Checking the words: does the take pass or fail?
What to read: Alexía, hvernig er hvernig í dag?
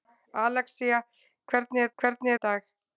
pass